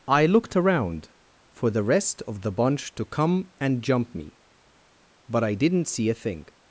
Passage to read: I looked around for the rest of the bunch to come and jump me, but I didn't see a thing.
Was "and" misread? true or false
false